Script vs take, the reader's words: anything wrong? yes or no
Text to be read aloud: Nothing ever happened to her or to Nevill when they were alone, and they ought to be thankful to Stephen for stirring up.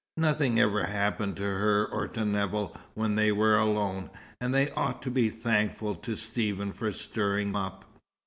no